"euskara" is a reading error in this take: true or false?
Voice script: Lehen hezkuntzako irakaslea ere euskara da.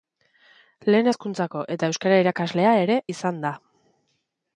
true